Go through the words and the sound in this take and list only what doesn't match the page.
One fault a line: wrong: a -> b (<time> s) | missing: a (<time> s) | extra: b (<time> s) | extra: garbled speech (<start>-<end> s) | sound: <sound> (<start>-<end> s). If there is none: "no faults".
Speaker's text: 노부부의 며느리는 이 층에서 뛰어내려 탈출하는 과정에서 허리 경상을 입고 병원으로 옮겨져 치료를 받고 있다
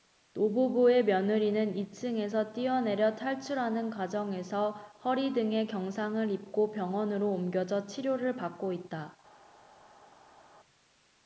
extra: 등에 (5.3 s)